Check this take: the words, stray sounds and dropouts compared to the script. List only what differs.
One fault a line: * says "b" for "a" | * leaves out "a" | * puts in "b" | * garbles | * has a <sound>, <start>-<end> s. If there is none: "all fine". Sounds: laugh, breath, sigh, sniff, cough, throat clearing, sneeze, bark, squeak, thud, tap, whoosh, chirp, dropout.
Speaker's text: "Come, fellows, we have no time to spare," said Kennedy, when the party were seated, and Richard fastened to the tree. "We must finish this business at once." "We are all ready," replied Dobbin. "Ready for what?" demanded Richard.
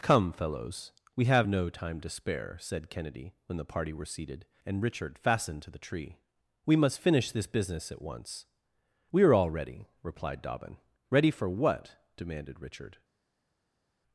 all fine